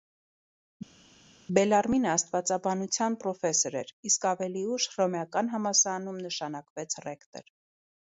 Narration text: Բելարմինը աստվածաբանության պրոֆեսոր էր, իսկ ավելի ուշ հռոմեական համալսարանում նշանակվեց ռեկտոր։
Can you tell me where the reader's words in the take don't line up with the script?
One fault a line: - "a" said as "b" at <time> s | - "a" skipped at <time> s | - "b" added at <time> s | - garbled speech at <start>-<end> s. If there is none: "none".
none